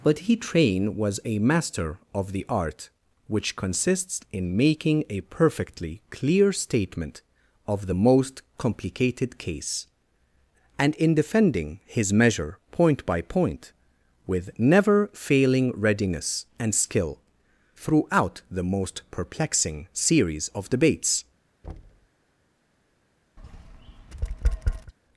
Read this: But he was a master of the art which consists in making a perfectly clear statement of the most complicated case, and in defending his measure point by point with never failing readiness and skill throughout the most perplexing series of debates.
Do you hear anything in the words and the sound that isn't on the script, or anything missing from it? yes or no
yes